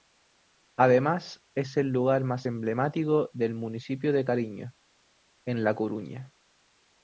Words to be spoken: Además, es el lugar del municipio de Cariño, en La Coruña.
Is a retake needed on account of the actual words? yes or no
yes